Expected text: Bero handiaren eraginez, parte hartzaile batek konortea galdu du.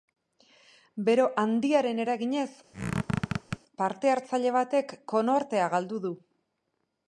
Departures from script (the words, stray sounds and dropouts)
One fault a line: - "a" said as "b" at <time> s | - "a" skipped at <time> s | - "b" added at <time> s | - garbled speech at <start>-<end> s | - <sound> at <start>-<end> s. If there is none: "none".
- squeak at 2.7-3.6 s